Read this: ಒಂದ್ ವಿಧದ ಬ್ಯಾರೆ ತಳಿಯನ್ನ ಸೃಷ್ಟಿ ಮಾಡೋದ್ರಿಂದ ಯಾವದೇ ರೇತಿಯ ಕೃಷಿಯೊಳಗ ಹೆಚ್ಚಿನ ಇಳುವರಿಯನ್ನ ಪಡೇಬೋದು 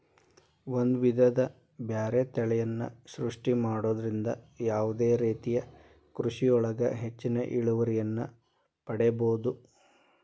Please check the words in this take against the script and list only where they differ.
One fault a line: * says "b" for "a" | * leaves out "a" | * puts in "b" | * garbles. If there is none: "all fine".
all fine